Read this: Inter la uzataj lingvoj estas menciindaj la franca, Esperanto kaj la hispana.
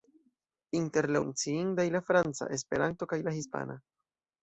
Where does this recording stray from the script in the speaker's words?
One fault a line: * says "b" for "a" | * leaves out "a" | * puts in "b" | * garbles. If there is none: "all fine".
* leaves out "uzataj lingvoj estas"